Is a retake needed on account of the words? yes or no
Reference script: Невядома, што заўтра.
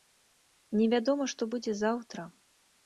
yes